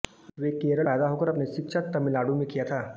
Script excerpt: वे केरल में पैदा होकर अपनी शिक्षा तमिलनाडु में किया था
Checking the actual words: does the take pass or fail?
fail